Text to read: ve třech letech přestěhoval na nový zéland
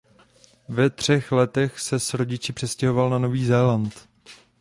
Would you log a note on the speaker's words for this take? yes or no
yes